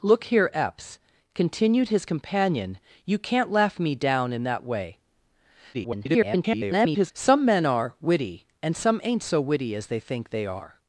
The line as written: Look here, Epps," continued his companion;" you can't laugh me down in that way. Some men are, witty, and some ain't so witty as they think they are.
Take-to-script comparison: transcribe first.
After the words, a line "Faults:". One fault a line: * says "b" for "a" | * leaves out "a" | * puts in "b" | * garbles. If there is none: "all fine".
Look here, Epps," continued his companion;" you can't laugh me down in that way. [garbled] Some men are, witty, and some ain't so witty as they think they are.
Faults:
* garbles